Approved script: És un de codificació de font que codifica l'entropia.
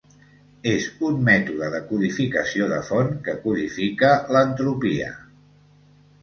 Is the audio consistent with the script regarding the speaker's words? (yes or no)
no